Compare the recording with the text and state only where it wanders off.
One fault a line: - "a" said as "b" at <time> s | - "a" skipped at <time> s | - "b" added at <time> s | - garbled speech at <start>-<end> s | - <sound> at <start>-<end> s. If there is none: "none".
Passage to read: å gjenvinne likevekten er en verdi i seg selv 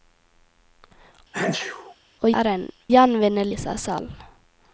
- sneeze at 1.3-2.0 s
- "gjenvinne likevekten" skipped at 2.3 s
- "verdi" said as "gjenvinne" at 2.9 s